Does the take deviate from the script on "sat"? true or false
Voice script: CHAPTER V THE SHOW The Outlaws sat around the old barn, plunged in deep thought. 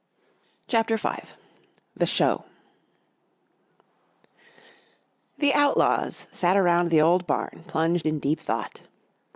false